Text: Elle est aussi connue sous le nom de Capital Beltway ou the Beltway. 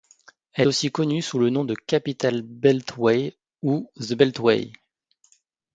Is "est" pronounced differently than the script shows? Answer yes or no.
yes